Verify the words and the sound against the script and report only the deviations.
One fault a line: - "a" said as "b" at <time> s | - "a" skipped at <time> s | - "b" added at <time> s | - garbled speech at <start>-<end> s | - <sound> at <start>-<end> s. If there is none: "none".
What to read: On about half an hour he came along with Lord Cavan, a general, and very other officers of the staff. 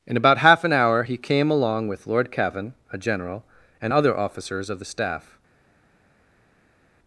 - "On" said as "In" at 0.1 s
- "very" skipped at 3.9 s